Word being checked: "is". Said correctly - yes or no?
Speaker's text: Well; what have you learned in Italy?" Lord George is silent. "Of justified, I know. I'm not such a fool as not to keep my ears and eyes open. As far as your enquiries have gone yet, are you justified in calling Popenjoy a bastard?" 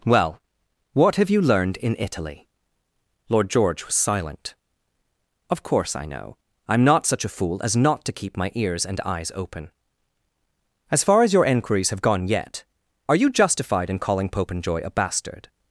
no